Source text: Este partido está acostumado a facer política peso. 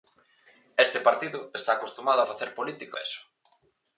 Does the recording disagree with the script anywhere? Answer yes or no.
no